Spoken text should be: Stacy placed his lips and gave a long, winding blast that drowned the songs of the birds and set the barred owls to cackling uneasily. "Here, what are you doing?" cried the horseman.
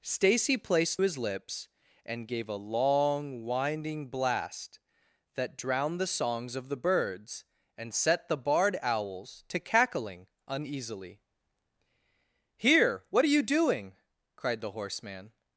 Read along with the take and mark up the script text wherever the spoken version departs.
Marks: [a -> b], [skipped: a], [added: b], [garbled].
Stacy placed his lips and gave a long, winding blast that drowned the songs of the birds and set the barred owls to cackling uneasily. "Here, what are you doing?" cried the horseman.